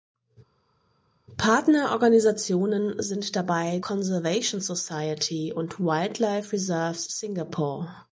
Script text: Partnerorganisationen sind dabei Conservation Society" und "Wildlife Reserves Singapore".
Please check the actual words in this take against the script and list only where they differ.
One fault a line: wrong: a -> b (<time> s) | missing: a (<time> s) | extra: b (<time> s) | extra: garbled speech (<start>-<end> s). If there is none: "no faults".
no faults